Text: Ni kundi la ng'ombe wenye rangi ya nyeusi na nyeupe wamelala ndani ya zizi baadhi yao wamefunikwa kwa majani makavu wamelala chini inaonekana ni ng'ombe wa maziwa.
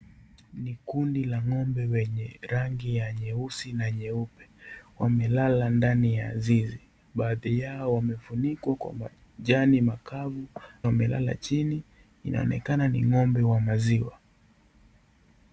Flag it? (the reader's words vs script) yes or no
no